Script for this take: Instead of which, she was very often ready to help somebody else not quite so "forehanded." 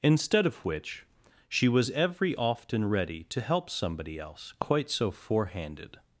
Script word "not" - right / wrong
wrong